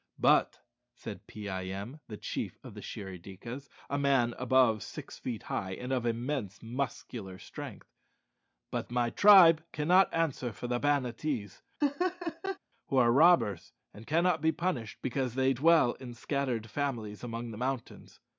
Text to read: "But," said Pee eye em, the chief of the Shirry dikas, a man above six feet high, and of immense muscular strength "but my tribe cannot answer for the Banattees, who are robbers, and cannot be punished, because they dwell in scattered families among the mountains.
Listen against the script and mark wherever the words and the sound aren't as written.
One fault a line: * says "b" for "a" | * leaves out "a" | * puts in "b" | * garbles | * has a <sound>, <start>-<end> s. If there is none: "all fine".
* has a laugh, 11.8-12.6 s